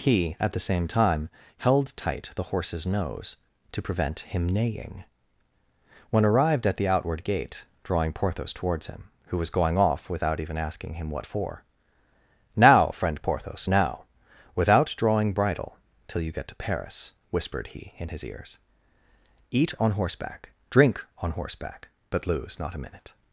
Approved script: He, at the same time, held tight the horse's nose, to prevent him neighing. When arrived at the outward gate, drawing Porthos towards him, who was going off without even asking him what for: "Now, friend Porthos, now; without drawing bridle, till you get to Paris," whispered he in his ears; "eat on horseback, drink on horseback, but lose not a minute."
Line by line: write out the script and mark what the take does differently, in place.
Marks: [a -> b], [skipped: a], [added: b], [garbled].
He, at the same time, held tight the horse's nose, to prevent him neighing. When arrived at the outward gate, drawing Porthos towards him, who was going off without even asking him what for: "Now, friend Porthos, now; without drawing bridle, till you get to Paris," whispered he in his ears; "eat on horseback, drink on horseback, but lose not a minute."